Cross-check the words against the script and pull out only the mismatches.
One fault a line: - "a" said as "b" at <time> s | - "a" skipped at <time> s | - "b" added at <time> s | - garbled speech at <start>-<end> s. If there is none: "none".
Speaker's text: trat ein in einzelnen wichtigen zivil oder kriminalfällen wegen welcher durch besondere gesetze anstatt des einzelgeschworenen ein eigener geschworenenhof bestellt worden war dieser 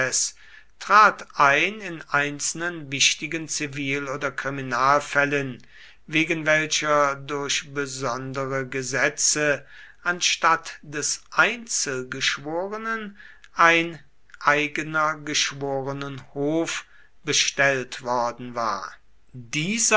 none